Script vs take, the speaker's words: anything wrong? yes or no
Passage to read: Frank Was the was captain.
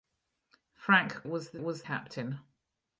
no